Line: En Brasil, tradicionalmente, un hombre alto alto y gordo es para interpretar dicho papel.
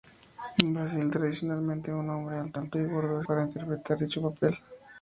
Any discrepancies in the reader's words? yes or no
no